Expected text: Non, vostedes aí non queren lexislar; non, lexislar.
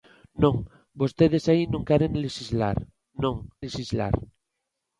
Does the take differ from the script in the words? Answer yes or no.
no